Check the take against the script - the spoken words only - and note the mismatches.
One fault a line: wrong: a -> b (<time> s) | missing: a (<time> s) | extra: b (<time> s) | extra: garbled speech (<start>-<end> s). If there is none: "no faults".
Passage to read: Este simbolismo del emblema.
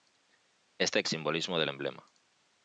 no faults